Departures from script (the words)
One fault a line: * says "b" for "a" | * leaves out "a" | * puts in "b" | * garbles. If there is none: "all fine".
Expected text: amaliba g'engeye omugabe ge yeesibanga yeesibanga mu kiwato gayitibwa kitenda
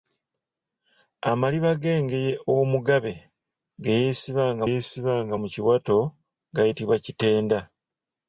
all fine